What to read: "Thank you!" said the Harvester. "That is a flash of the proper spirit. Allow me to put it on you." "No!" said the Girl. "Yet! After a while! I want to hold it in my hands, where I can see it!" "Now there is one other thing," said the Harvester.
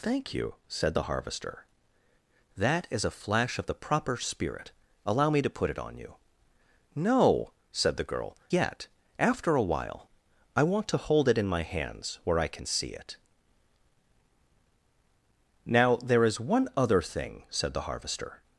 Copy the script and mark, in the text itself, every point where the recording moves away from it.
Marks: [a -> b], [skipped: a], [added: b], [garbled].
"Thank you!" said the Harvester. "That is a flash of the proper spirit. Allow me to put it on you." "No!" said the Girl. "Yet! After a while! I want to hold it in my hands, where I can see it!" "Now there is one other thing," said the Harvester.